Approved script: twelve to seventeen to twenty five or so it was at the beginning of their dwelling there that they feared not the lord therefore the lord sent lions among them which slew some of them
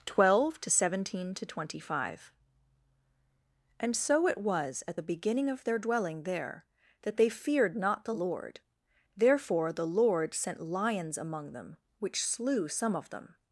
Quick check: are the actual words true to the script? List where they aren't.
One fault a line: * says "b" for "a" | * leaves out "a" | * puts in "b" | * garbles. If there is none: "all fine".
* says "and" for "or"